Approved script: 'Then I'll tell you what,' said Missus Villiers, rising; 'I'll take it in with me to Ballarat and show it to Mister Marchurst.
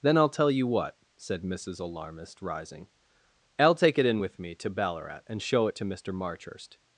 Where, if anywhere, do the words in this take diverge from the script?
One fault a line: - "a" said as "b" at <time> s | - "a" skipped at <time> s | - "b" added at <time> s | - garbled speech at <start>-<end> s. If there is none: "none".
- "Villiers" said as "Alarmist" at 1.8 s